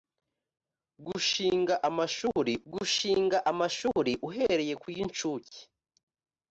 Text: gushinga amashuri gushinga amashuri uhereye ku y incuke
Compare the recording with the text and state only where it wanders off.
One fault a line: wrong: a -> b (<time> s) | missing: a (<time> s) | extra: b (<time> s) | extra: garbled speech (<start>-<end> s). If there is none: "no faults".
no faults